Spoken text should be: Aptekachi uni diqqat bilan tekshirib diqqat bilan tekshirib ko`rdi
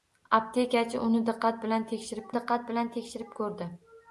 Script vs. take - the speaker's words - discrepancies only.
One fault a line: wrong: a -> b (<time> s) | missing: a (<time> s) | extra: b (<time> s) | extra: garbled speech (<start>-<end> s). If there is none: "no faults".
no faults